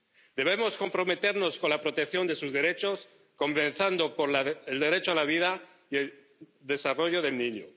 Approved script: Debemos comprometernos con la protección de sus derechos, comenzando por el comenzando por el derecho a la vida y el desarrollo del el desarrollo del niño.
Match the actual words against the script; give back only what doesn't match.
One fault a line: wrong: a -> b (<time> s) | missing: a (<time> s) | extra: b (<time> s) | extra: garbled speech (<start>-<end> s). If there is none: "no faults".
missing: comenzando por el (4.8 s)
missing: el desarrollo del (7.4 s)